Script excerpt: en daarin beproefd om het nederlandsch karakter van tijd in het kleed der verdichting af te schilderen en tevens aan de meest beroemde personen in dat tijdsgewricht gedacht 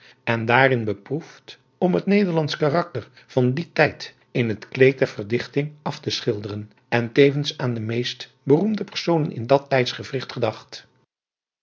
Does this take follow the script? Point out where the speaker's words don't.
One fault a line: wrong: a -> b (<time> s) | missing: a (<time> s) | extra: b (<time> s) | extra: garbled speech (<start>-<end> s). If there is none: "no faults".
extra: dien (3.5 s)